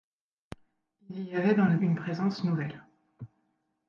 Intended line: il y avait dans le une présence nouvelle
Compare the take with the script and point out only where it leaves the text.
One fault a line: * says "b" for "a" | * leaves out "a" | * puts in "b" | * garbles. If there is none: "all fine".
all fine